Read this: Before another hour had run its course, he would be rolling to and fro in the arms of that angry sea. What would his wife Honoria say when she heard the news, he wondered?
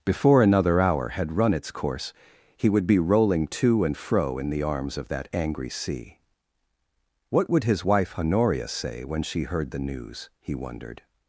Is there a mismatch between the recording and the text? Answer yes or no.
no